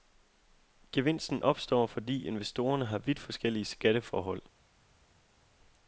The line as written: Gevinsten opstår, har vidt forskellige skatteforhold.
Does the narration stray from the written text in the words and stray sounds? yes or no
yes